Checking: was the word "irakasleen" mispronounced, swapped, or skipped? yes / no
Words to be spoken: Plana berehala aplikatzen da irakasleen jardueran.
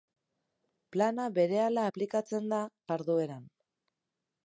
yes